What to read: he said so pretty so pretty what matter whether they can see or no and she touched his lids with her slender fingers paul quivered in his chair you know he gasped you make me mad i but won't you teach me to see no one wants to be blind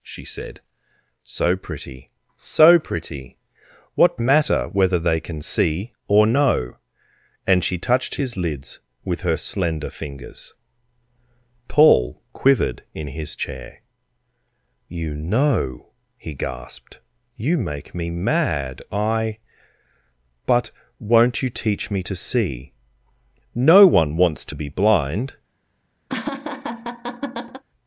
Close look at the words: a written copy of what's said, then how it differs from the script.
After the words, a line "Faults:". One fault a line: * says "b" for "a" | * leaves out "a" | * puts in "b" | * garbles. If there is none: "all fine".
she said so pretty so pretty what matter whether they can see or no and she touched his lids with her slender fingers paul quivered in his chair you know he gasped you make me mad i but won't you teach me to see no one wants to be blind
Faults:
* says "she" for "he"